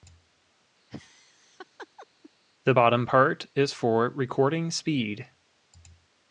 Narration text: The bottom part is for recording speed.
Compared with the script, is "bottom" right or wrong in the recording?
right